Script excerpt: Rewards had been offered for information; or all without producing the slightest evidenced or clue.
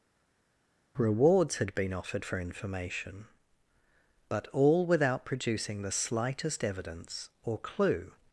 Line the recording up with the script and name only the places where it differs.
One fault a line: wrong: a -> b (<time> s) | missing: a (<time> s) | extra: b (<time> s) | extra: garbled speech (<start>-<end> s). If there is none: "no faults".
wrong: or -> but (4.3 s)
wrong: evidenced -> evidence (6.6 s)